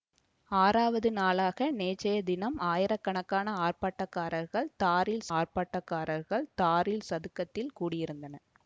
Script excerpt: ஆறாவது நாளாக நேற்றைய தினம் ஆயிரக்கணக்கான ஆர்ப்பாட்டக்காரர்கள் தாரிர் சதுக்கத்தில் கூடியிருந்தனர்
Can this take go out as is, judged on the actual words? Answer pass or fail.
fail